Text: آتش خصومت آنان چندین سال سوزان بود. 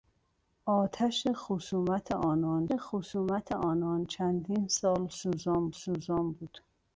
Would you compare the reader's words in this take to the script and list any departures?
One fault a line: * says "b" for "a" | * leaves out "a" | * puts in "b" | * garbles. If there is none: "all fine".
* puts in "خصومت آنان"
* puts in "سوزان"